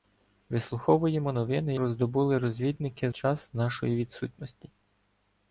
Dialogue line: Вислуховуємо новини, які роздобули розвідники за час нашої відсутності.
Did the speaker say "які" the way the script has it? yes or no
no